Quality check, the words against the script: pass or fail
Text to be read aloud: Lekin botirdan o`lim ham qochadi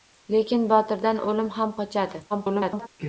fail